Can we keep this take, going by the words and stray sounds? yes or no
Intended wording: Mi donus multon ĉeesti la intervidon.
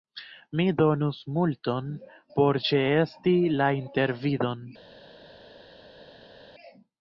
no